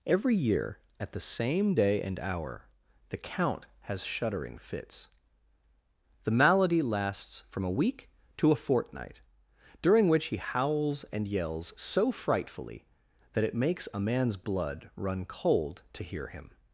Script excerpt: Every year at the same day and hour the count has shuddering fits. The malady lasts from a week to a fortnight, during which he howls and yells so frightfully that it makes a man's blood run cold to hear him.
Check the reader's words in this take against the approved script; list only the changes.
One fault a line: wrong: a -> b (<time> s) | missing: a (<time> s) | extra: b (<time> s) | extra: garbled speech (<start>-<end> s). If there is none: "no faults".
no faults